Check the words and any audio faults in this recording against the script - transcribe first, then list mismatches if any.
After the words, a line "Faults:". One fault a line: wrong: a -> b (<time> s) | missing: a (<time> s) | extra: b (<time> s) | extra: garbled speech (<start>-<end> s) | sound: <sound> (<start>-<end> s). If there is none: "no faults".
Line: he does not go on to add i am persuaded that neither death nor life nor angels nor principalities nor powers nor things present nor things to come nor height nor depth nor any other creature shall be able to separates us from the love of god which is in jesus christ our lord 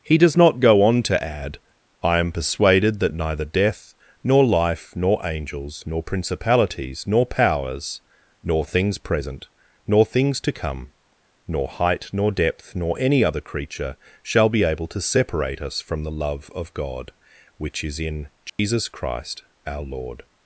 he does not go on to add i am persuaded that neither death nor life nor angels nor principalities nor powers nor things present nor things to come nor height nor depth nor any other creature shall be able to separate us from the love of god which is in jesus christ our lord
Faults:
wrong: separates -> separate (15.0 s)
sound: dropout (18.5-18.6 s)